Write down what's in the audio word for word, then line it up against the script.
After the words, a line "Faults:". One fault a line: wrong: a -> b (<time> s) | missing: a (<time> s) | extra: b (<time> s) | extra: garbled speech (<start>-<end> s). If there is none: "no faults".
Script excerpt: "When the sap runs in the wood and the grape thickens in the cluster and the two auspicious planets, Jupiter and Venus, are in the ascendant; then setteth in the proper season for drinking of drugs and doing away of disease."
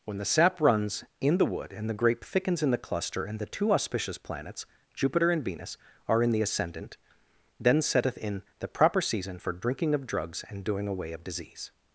"When the sap runs in the wood and the grape thickens in the cluster and the two auspicious planets, Jupiter and Venus, are in the ascendant; then setteth in the proper season for drinking of drugs and doing away of disease."
Faults:
no faults